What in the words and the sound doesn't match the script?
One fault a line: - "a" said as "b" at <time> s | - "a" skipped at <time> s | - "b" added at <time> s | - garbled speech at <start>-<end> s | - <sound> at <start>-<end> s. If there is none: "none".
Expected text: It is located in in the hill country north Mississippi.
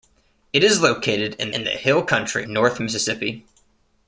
none